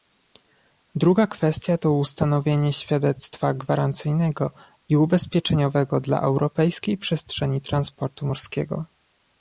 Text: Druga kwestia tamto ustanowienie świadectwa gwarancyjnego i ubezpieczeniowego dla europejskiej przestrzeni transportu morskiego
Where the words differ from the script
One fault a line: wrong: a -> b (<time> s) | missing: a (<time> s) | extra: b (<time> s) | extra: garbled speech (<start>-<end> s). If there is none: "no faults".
wrong: tamto -> to (1.8 s)